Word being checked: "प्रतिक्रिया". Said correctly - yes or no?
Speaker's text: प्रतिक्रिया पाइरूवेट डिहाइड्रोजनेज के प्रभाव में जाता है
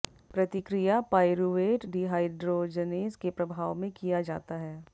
yes